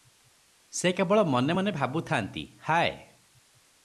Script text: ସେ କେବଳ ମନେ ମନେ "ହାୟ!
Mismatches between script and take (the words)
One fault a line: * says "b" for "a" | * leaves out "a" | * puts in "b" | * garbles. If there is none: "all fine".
* puts in "ଭାବୁଥାନ୍ତି"